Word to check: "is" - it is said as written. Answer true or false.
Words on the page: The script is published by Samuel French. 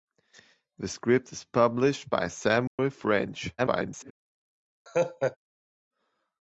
true